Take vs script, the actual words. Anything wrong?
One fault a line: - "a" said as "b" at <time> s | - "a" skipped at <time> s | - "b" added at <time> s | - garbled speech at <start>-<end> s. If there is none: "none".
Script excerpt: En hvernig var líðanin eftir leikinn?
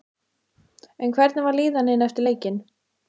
none